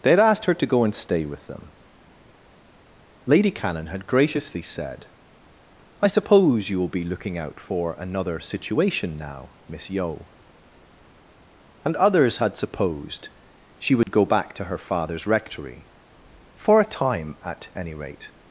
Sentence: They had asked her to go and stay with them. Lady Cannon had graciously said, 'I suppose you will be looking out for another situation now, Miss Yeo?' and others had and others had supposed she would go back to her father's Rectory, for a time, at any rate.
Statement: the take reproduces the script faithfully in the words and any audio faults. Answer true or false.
false